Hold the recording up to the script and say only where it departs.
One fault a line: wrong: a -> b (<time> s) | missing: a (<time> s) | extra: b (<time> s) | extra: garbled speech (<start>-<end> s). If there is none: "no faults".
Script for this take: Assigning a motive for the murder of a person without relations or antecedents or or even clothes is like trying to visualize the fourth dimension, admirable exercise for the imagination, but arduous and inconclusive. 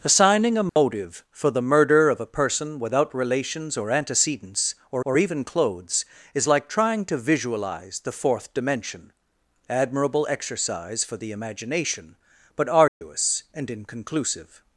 no faults